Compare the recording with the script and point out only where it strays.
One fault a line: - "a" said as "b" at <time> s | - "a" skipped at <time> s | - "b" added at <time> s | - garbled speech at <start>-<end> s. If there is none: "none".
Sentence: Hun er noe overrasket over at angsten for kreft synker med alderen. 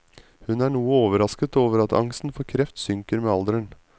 none